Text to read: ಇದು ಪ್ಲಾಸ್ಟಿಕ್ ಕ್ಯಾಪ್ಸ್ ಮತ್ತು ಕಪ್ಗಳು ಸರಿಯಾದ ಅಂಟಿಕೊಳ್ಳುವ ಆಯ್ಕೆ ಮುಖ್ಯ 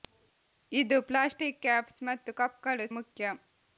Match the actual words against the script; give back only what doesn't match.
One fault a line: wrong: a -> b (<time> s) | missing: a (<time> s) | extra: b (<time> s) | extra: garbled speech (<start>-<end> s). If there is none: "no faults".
missing: ಸರಿಯಾದ ಅಂಟಿಕೊಳ್ಳುವ ಆಯ್ಕೆ (2.9 s)